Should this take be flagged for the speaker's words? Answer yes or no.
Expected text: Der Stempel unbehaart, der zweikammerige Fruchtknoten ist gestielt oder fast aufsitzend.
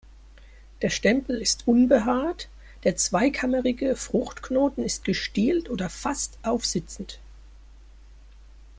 yes